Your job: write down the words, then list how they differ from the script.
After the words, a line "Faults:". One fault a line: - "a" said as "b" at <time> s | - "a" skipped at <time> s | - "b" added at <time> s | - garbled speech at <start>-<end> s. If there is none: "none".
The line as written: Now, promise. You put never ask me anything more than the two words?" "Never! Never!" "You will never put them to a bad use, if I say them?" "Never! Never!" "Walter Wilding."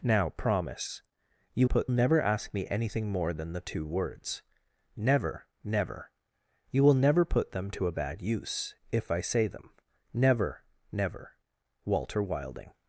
Now, promise. You put never ask me anything more than the two words?" "Never! Never!" "You will never put them to a bad use, if I say them?" "Never! Never!" "Walter Wilding."
Faults:
none